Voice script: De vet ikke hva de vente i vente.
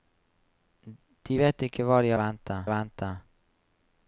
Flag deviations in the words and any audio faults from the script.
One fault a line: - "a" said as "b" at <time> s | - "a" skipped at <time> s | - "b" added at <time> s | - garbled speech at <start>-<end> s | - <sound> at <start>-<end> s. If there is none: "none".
none